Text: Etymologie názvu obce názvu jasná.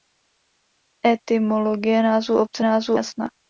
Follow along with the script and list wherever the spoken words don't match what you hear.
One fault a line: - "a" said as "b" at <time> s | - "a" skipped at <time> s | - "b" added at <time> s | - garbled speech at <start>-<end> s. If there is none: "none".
none